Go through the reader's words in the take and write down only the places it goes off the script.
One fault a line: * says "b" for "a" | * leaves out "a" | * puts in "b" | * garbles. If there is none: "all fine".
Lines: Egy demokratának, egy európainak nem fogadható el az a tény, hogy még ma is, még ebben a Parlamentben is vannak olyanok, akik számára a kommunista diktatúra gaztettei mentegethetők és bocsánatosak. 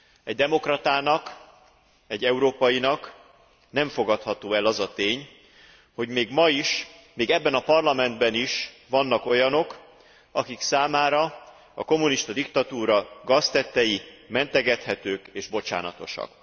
all fine